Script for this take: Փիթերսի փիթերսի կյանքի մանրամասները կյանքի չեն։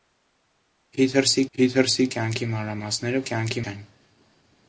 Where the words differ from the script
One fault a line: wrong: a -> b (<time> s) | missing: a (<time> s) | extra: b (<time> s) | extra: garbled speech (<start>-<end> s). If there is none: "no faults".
no faults